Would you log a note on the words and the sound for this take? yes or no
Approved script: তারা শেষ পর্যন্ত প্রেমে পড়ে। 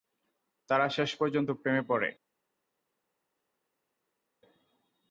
no